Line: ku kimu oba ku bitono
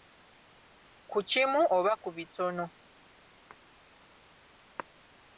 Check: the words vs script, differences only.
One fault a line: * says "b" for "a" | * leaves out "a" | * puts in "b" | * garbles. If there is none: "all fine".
all fine